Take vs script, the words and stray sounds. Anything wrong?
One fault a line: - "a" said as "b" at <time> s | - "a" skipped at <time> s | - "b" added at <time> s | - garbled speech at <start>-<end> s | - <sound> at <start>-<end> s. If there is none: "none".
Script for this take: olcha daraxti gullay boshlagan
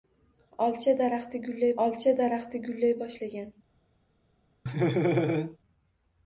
- "olcha daraxti gullay" added at 1.9 s
- laugh at 4.7-5.6 s